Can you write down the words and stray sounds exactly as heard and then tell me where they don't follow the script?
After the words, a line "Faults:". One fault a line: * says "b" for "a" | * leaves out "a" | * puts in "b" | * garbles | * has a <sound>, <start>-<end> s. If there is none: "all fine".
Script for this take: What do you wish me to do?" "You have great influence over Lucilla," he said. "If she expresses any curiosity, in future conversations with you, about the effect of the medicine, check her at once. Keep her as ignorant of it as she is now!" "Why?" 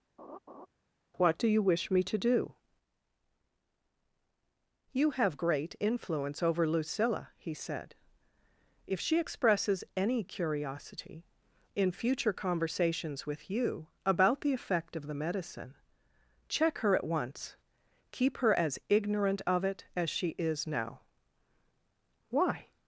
What do you wish me to do?" "You have great influence over Lucilla," he said. "If she expresses any curiosity, in future conversations with you, about the effect of the medicine, check her at once. Keep her as ignorant of it as she is now!" "Why?"
Faults:
* has a laugh, 0.2-0.7 s